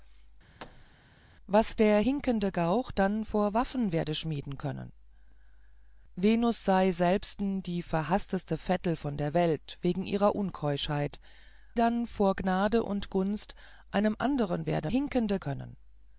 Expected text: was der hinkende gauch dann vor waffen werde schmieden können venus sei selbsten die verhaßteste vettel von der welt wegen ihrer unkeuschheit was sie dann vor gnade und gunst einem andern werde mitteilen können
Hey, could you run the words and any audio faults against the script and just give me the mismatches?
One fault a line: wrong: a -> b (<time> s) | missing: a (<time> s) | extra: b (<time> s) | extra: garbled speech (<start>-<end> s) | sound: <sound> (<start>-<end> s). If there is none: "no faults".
sound: thud (0.6-0.9 s)
missing: was sie (11.2 s)
wrong: mitteilen -> hinkende (14.9 s)